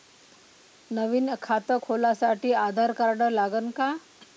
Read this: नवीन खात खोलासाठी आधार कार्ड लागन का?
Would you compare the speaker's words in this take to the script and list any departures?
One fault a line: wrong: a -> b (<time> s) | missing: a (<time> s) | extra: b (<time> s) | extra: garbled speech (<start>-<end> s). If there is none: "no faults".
no faults